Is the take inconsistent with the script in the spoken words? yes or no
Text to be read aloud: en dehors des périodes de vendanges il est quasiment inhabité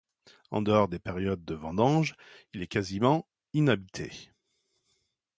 no